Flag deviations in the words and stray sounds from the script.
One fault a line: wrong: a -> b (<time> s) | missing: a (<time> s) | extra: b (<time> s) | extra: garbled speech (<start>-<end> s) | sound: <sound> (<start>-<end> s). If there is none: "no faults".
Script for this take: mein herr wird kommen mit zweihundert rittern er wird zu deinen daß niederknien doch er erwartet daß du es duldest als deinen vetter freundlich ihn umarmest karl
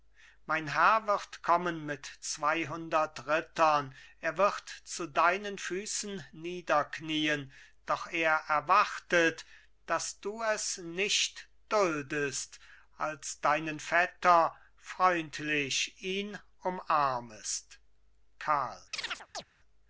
wrong: daß -> füßen (5.6 s)
extra: nicht (10.8 s)
sound: chirp (18.9-19.4 s)